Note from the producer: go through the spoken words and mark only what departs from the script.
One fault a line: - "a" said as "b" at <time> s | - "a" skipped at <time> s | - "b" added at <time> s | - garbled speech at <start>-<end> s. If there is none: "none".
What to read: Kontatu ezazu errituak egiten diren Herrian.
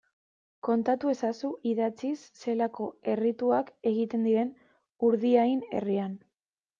- "idatziz zelako" added at 1.7 s
- "Urdiain" added at 5.1 s